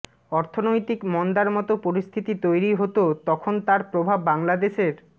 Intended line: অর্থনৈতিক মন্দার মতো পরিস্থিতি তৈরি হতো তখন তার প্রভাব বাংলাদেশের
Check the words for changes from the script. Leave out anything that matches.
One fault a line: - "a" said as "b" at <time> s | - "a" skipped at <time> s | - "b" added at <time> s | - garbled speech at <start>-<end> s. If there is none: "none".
none